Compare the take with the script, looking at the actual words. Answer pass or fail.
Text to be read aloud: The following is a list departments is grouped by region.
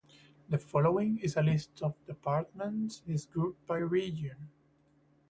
fail